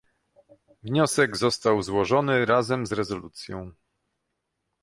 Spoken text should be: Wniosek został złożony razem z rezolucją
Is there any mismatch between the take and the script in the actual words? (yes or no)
no